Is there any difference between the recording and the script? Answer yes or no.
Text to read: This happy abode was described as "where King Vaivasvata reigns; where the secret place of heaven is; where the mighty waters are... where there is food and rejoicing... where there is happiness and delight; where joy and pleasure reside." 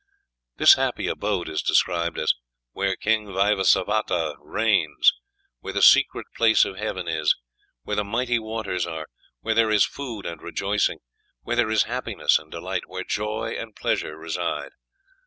yes